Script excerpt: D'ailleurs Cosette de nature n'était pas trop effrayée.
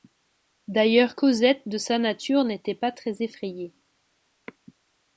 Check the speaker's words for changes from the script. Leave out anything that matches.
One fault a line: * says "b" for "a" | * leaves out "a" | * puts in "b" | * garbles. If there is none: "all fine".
* puts in "sa"
* says "très" for "trop"